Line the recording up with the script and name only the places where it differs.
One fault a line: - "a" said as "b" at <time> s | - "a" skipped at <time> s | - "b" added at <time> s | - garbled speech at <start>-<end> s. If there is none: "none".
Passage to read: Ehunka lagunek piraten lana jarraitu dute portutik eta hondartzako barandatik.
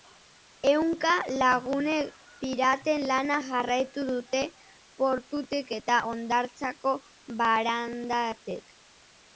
none